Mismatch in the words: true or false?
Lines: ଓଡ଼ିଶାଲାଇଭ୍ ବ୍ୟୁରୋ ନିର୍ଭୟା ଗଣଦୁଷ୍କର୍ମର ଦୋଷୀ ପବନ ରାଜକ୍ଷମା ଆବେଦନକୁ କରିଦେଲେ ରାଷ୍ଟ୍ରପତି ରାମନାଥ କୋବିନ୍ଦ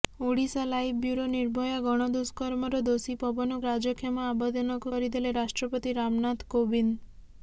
false